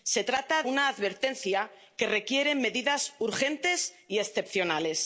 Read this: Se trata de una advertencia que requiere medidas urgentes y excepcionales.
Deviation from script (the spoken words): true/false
true